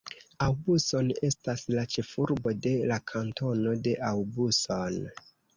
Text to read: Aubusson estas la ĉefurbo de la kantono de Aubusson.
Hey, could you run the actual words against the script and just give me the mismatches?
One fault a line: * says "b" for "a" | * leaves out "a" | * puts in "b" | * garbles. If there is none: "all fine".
all fine